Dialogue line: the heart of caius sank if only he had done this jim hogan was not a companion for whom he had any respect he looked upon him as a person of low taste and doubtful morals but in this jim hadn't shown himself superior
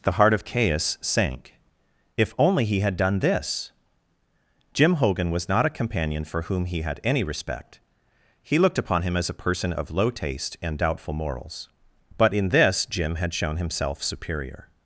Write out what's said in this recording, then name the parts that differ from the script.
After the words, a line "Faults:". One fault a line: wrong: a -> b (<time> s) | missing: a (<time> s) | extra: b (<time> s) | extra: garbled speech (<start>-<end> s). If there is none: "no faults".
the heart of caius sank if only he had done this jim hogan was not a companion for whom he had any respect he looked upon him as a person of low taste and doubtful morals but in this jim had shown himself superior
Faults:
wrong: hadn't -> had (13.2 s)